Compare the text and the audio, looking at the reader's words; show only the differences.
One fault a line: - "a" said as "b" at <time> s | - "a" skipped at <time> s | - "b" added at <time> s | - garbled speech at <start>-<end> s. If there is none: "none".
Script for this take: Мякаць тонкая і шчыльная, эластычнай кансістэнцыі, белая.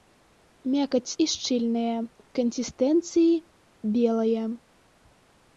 - "тонкая" skipped at 1.2 s
- "эластычнай" skipped at 2.0 s